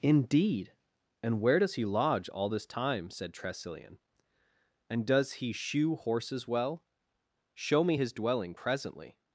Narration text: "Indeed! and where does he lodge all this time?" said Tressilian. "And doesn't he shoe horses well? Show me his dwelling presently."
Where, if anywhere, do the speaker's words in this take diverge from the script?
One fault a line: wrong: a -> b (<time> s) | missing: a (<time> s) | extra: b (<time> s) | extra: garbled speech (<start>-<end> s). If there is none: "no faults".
wrong: doesn't -> does (5.1 s)